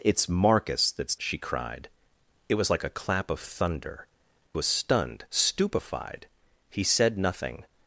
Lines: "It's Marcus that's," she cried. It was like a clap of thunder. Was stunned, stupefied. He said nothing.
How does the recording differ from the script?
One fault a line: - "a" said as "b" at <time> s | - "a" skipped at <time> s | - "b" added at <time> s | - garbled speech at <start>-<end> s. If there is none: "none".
none